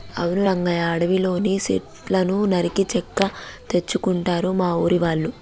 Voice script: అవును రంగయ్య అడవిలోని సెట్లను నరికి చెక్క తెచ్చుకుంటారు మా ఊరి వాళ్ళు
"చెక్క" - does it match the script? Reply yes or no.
yes